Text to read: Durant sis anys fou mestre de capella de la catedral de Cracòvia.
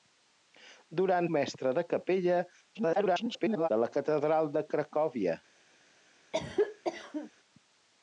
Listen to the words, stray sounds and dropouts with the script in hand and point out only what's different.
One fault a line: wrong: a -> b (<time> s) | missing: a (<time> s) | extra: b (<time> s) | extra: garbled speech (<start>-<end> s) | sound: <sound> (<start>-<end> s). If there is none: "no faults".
missing: sis anys fou (1.3 s)
extra: garbled speech (2.7-3.7 s)
sound: cough (6.3-7.3 s)